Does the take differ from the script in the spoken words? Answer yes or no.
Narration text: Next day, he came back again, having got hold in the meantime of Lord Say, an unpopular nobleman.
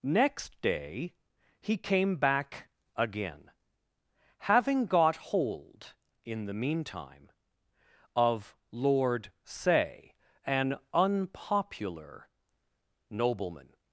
no